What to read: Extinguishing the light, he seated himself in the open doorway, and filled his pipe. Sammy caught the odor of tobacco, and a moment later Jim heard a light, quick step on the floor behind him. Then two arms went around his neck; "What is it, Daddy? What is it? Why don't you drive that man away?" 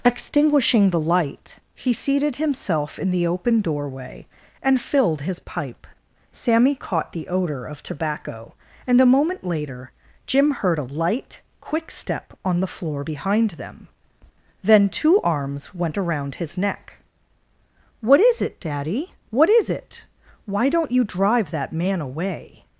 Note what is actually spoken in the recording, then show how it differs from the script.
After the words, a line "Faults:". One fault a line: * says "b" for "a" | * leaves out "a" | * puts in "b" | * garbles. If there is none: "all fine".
Extinguishing the light, he seated himself in the open doorway, and filled his pipe. Sammy caught the odor of tobacco, and a moment later Jim heard a light, quick step on the floor behind them. Then two arms went around his neck; "What is it, Daddy? What is it? Why don't you drive that man away?"
Faults:
* says "them" for "him"